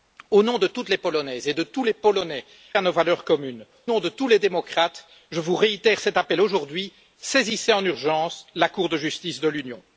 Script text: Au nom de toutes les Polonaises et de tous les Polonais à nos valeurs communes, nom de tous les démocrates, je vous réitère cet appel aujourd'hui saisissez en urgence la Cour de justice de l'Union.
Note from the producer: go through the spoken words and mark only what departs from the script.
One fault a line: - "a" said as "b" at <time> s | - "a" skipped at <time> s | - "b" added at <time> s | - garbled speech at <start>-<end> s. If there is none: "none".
none